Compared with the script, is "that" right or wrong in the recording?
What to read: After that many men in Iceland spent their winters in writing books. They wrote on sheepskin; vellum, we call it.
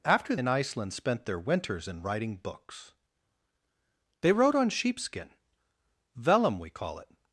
wrong